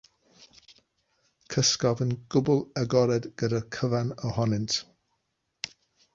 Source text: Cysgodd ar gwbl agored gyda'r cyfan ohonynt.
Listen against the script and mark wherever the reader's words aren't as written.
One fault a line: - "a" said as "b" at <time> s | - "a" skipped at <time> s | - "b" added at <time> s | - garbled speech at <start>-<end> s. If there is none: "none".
- "ar" said as "yn" at 2.0 s